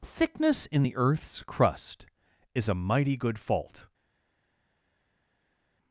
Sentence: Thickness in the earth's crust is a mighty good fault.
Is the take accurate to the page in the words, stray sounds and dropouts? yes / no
yes